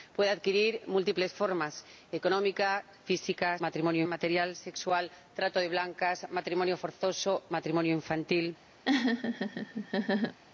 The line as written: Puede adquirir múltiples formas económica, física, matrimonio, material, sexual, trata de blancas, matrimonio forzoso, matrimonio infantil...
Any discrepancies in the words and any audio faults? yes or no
yes